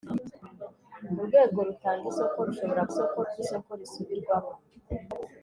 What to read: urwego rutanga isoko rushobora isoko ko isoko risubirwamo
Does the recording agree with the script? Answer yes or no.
yes